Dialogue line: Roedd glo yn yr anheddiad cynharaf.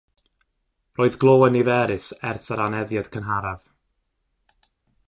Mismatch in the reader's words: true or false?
true